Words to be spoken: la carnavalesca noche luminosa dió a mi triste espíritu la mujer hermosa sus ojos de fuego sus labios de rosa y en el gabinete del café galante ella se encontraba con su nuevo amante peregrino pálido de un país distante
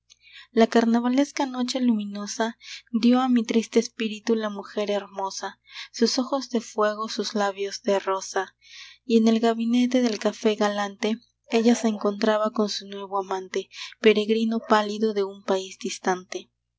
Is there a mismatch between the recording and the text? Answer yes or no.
no